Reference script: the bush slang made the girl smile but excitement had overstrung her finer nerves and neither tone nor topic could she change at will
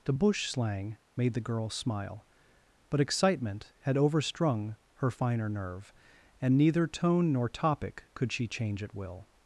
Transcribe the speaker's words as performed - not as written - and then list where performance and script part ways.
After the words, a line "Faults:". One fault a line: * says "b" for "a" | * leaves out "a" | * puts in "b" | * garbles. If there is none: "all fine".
the bush slang made the girl smile but excitement had overstrung her finer nerve and neither tone nor topic could she change at will
Faults:
* says "nerve" for "nerves"